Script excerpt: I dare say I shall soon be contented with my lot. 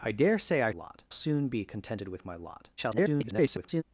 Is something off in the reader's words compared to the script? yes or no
yes